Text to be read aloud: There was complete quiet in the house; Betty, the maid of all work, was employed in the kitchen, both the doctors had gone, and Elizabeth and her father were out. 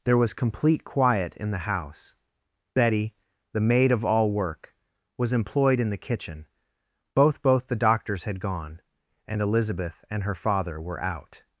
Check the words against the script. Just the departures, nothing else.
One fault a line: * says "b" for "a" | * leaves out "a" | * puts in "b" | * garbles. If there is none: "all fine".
* puts in "both"